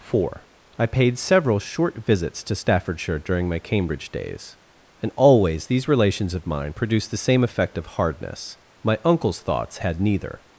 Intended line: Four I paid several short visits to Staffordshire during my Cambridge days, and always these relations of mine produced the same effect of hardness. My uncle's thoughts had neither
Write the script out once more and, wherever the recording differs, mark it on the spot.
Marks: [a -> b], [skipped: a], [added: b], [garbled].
Four I paid several short visits to Staffordshire during my Cambridge days, and always these relations of mine produced the same effect of hardness. My uncle's thoughts had neither